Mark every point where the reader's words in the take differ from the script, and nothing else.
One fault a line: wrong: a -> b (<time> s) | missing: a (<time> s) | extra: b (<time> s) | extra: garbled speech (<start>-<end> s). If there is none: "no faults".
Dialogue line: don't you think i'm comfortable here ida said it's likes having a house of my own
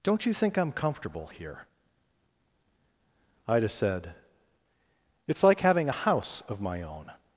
wrong: likes -> like (5.4 s)